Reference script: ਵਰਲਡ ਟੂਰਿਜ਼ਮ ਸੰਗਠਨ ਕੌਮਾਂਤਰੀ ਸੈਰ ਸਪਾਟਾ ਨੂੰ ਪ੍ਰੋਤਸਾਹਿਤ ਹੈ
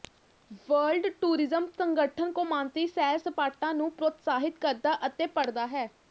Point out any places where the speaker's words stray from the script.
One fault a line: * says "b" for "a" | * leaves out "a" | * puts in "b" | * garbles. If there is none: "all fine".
* puts in "ਕਰਦਾ ਅਤੇ ਪੜ੍ਹਦਾ"